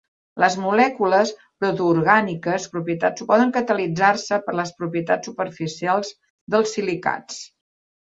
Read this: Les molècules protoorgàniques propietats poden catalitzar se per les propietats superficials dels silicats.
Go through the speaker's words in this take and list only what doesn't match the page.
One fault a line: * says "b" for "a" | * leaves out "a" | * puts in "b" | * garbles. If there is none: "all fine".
all fine